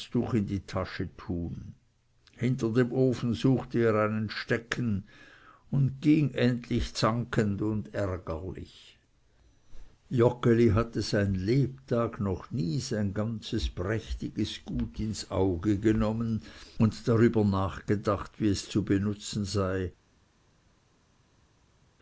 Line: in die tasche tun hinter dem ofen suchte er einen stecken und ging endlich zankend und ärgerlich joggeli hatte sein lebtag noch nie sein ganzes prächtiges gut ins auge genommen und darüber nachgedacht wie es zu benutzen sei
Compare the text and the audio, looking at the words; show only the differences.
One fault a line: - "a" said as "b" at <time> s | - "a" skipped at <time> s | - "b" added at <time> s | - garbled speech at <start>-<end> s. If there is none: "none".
none